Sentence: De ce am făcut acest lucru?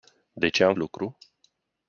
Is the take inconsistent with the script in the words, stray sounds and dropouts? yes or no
yes